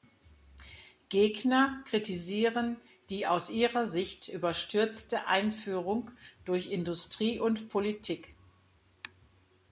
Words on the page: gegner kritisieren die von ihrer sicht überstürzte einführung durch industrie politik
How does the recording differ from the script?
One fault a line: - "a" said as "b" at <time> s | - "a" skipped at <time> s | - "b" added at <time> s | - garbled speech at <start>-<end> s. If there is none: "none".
- "von" said as "aus" at 3.3 s
- "und" added at 7.4 s